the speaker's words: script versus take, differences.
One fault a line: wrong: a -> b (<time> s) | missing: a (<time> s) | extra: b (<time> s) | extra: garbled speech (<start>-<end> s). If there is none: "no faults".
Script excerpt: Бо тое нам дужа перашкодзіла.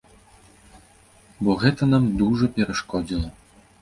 wrong: тое -> гэта (1.6 s)